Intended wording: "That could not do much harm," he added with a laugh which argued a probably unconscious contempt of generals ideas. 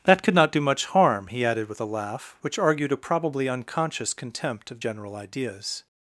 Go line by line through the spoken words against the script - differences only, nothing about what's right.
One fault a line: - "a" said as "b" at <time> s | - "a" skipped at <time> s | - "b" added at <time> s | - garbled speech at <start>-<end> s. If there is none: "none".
- "generals" said as "general" at 4.8 s